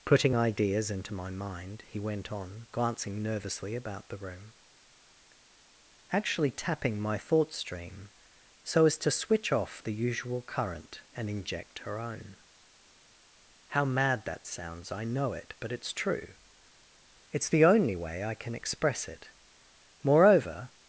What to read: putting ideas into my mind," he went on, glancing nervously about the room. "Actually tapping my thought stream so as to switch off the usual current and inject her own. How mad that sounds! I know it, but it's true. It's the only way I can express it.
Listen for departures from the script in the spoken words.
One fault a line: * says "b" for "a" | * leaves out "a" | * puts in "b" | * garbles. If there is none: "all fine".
* puts in "Moreover"